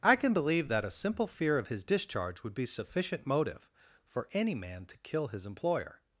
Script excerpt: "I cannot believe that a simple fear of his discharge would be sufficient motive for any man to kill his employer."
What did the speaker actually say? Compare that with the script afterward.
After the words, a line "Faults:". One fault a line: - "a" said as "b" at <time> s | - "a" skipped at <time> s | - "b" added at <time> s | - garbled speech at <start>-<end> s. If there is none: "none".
"I can believe that a simple fear of his discharge would be sufficient motive for any man to kill his employer."
Faults:
- "cannot" said as "can" at 0.1 s